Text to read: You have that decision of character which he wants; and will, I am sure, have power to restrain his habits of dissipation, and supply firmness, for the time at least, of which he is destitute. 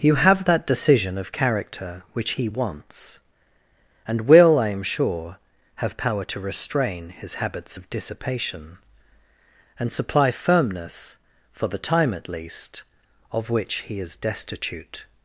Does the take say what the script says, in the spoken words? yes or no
yes